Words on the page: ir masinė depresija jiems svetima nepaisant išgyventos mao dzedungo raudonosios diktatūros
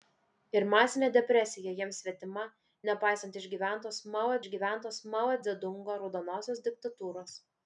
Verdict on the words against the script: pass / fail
fail